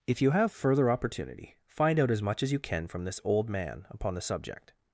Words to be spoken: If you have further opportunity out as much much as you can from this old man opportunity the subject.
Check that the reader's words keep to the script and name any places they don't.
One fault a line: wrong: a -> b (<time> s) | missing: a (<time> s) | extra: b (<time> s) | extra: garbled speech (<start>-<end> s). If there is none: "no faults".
extra: find (1.7 s)
missing: much (2.4 s)
wrong: opportunity -> upon (3.9 s)